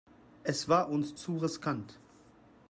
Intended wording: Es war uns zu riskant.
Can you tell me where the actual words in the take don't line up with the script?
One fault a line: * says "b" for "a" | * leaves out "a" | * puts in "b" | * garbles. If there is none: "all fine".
all fine